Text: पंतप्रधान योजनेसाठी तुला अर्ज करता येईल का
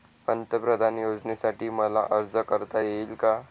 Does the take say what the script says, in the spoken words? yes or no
no